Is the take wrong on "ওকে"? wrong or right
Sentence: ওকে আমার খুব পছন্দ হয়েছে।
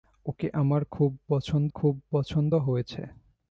right